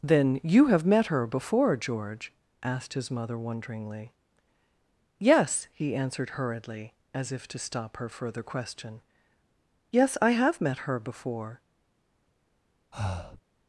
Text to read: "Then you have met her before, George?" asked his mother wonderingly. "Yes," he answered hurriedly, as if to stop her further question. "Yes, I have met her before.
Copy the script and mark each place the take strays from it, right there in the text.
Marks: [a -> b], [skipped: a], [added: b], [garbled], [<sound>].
"Then you have met her before, George?" asked his mother wonderingly. "Yes," he answered hurriedly, as if to stop her further question. "Yes, I have met her before. [breath]